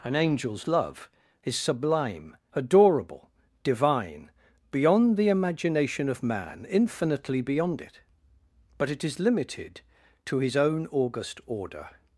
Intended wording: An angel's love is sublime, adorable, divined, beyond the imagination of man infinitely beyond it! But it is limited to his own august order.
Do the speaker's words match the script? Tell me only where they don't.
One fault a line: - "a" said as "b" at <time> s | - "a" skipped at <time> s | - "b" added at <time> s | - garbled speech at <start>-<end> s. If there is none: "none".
- "divined" said as "divine" at 3.6 s